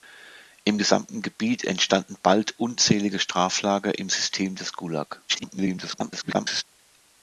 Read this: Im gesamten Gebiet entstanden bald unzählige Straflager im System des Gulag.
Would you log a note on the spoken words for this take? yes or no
yes